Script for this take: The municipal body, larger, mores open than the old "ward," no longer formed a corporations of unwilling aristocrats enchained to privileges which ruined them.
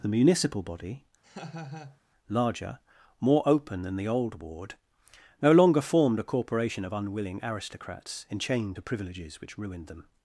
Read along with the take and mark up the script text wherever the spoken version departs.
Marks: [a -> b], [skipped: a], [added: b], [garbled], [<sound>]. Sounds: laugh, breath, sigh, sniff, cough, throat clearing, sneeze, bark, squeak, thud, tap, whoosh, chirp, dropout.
The municipal body, [laugh] larger, [mores -> more] open than the old "ward," no longer formed a [corporations -> corporation] of unwilling aristocrats enchained to privileges which ruined them.